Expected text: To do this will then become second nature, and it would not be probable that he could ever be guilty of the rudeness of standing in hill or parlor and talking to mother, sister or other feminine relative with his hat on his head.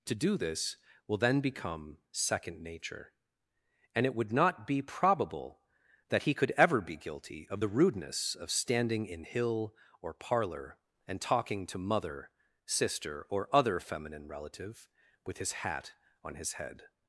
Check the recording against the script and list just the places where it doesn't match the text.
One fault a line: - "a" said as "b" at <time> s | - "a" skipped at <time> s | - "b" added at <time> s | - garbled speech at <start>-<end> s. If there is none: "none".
none